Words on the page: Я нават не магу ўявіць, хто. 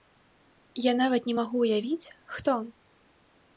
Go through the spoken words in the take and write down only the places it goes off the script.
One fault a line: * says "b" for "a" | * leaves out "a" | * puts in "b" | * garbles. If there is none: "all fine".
all fine